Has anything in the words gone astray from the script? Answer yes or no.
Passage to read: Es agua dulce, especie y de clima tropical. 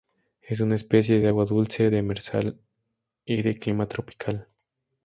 yes